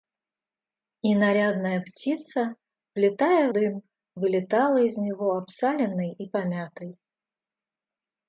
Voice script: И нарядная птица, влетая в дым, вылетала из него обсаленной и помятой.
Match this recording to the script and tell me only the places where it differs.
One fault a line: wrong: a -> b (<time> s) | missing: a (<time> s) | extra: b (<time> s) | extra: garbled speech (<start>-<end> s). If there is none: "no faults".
no faults